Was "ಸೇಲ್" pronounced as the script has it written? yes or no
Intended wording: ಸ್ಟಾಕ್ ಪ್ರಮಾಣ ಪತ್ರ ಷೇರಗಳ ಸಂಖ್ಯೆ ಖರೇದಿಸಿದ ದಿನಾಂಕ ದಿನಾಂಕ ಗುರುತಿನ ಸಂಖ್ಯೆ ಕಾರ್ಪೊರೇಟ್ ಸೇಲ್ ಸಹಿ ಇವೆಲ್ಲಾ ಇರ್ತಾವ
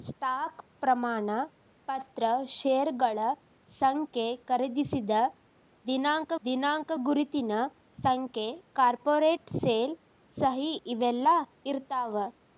yes